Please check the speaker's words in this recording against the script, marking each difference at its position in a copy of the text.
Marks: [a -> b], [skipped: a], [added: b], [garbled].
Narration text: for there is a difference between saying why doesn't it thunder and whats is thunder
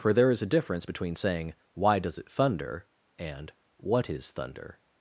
for there is a difference between saying why [doesn't -> does] it thunder and [whats -> what] is thunder